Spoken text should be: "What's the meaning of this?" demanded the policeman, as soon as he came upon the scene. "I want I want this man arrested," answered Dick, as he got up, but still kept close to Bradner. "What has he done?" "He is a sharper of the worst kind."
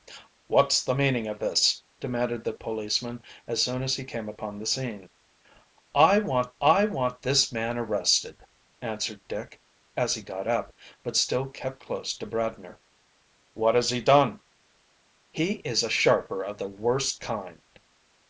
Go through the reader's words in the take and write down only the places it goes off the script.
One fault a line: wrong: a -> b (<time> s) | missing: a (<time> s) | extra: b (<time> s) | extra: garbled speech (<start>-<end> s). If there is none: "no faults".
no faults